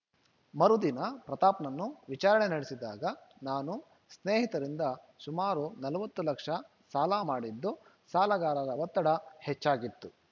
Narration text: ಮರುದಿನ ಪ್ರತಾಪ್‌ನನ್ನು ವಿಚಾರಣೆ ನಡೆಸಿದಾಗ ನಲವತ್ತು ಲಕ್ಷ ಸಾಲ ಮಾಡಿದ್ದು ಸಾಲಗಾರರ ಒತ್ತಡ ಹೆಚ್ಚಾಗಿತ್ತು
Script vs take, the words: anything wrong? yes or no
yes